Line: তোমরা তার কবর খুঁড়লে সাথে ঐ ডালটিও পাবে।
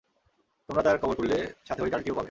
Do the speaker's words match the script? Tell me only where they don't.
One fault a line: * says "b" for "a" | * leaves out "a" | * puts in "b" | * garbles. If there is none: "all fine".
all fine